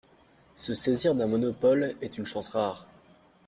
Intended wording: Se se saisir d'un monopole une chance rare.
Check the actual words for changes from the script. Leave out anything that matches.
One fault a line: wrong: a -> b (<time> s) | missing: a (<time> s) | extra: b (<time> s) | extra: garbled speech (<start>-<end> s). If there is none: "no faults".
missing: se (0.7 s)
extra: est (2.0 s)